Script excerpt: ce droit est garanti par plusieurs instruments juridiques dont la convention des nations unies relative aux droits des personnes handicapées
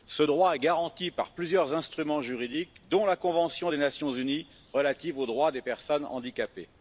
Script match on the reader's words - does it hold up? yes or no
yes